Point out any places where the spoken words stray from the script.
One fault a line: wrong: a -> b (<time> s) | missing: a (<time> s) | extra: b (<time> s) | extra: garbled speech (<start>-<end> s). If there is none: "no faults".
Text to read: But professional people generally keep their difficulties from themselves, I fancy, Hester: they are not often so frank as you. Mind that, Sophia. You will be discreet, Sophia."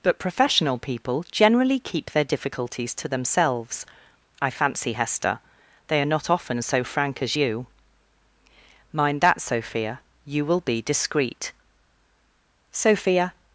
wrong: from -> to (3.0 s)